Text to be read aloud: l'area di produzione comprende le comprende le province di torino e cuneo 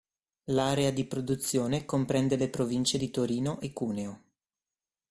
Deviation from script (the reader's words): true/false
true